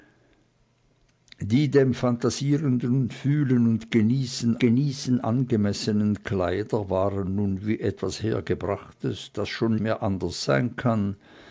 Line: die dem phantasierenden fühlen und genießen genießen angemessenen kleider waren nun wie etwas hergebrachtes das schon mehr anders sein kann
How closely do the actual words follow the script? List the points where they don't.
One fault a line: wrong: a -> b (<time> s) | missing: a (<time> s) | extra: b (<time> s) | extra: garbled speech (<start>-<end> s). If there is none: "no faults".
no faults